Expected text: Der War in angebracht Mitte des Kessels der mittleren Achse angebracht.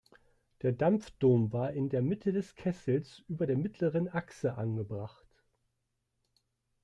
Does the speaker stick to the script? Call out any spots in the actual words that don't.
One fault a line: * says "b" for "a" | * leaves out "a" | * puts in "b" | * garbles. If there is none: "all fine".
* puts in "Dampfdom"
* says "der" for "angebracht"
* puts in "über"